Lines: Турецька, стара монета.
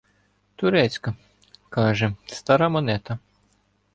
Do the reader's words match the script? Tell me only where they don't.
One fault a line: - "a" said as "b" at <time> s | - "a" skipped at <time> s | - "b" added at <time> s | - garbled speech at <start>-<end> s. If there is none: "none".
- "каже" added at 1.7 s